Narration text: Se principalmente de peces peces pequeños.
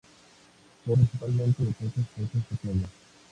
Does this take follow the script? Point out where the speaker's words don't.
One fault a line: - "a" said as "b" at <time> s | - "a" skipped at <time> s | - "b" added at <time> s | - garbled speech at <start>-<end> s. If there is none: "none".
none